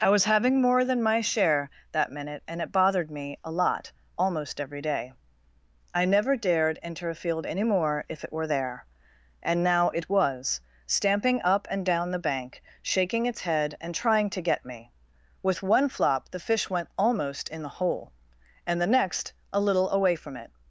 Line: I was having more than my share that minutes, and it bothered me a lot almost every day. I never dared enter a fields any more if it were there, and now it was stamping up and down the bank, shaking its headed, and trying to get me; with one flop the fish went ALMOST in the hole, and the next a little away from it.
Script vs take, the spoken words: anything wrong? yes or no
yes